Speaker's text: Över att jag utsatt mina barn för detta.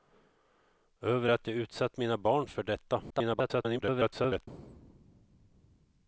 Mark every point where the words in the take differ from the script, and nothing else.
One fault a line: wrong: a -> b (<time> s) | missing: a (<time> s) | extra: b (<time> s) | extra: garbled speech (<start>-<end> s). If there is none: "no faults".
extra: garbled speech (3.1-4.5 s)